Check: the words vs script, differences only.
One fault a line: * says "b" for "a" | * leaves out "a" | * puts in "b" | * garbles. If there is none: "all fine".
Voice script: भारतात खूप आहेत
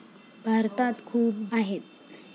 all fine